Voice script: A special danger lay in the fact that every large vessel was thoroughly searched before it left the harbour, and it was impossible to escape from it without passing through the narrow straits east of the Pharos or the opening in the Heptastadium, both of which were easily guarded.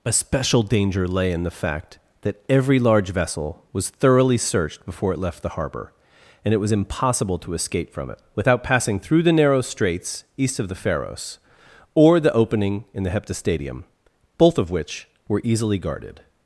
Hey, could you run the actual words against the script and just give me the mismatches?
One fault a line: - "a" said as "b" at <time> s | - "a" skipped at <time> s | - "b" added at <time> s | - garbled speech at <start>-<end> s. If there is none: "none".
none